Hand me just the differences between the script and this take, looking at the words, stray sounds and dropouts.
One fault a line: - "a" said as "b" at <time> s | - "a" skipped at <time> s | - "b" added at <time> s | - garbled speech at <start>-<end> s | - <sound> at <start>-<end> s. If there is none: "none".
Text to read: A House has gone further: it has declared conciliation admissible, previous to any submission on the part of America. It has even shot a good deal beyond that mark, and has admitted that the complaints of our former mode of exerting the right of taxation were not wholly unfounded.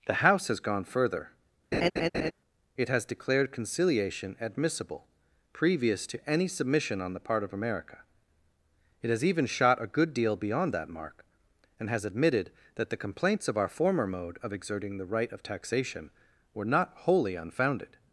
- "A" said as "The" at 0.1 s
- laugh at 1.7-2.3 s